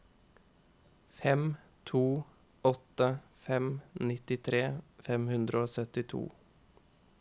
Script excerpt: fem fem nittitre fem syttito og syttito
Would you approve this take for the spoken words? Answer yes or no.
no